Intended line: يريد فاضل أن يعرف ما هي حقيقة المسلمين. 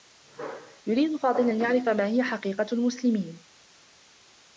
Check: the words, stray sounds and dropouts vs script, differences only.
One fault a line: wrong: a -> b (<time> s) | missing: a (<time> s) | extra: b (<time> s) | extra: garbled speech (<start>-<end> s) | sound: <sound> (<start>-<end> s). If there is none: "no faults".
no faults